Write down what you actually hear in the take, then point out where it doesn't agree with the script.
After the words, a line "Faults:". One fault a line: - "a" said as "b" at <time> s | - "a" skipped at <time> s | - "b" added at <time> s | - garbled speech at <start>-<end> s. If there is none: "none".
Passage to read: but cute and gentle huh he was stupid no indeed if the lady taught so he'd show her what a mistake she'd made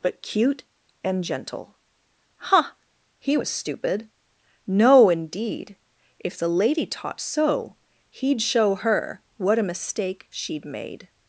but cute and gentle huh he was stupid no indeed if the lady taught so he'd show her what a mistake she'd made
Faults:
none